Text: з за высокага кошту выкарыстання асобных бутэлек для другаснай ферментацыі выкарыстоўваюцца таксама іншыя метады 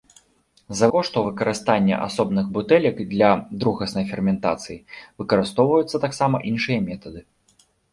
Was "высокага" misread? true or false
true